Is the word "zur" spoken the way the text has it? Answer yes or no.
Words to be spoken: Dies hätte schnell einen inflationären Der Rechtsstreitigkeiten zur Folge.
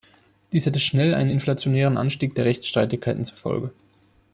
yes